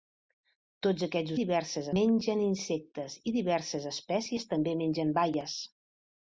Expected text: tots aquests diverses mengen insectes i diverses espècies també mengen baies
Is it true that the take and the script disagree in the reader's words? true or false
false